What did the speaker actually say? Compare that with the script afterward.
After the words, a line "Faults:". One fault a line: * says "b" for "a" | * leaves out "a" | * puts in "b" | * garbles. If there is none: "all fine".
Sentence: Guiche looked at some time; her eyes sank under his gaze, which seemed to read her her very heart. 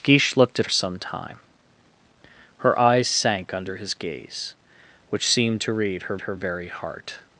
Guiche looked at some time; her eyes sank under his gaze, which seemed to read her her very heart.
Faults:
all fine